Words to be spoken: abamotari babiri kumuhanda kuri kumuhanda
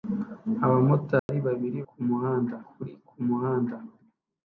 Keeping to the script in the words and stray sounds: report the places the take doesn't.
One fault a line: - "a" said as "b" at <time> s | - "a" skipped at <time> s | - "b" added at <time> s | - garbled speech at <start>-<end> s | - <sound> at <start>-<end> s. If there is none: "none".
- dropout at 1.2-1.3 s